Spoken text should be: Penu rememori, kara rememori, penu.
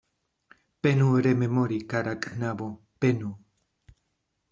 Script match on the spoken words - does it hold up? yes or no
no